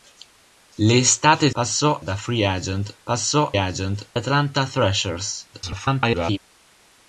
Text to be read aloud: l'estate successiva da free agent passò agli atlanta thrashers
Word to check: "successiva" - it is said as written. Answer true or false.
false